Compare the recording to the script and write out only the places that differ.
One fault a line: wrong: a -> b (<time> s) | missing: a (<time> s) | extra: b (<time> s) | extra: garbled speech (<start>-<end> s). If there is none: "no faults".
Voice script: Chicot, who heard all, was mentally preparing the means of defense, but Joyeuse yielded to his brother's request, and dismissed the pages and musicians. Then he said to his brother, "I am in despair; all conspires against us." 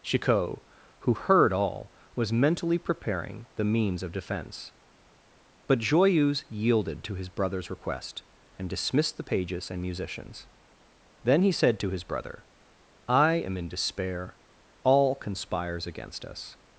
no faults